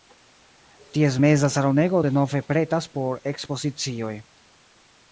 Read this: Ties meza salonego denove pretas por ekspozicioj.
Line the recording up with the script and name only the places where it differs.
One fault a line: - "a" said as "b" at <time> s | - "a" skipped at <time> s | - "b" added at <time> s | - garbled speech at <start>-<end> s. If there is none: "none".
none